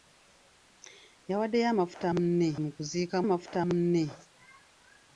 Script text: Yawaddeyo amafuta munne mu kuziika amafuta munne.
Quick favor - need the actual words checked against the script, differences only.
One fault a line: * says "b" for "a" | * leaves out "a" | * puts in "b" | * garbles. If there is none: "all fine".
all fine